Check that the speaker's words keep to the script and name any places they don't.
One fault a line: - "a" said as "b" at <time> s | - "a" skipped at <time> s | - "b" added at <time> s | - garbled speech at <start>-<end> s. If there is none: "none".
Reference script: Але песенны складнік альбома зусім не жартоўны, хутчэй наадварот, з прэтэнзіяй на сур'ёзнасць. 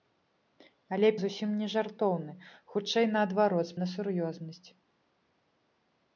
- "песенны складнік альбома" skipped at 1.1 s
- "прэтэнзіяй" skipped at 3.8 s